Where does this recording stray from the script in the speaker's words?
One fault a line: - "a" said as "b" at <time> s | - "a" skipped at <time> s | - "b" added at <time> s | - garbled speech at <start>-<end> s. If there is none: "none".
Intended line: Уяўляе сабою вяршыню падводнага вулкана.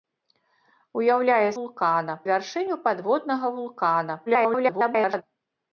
- "сабою" said as "вулкана" at 1.6 s
- garbled speech at 4.3-5.2 s